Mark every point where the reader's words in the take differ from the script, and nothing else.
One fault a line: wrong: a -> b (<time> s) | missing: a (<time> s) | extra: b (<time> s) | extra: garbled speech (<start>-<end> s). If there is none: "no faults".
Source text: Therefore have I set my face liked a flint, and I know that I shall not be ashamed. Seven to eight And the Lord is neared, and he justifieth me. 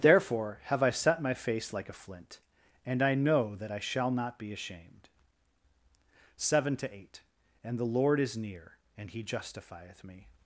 wrong: liked -> like (1.7 s)
wrong: neared -> near (8.3 s)